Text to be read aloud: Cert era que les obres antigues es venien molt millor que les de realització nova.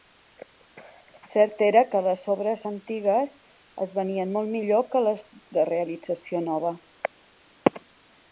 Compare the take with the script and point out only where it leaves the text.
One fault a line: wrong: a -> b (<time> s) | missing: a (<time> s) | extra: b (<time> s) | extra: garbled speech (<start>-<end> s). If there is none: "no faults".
no faults